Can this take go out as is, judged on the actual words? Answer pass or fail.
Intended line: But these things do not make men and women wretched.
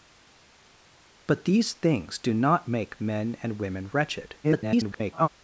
fail